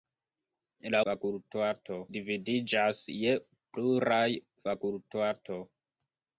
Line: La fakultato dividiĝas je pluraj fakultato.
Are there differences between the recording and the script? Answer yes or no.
no